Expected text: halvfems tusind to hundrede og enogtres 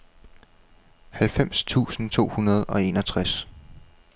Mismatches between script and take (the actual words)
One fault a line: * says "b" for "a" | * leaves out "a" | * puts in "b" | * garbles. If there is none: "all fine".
all fine